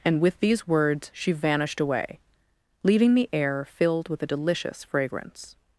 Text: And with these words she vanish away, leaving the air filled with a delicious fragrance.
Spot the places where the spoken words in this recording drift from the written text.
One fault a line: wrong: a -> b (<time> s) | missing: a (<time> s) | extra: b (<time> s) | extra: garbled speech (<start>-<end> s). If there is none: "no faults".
wrong: vanish -> vanished (1.3 s)